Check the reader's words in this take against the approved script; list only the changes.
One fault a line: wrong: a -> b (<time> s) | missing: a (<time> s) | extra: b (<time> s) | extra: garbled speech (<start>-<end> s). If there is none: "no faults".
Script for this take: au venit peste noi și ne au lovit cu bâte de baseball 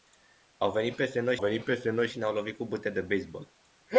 extra: venit peste noi (1.4 s)